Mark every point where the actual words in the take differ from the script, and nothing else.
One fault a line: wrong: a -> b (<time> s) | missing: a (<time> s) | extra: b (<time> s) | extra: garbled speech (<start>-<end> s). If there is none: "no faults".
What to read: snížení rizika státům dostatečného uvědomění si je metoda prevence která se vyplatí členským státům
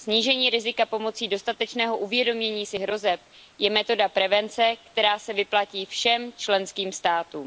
wrong: státům -> pomocí (0.8 s)
extra: hrozeb (2.8 s)
extra: všem (5.9 s)